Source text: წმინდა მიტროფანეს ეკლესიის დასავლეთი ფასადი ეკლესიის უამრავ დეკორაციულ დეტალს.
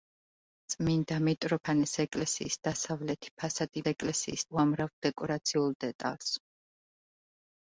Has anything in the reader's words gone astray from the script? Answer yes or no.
no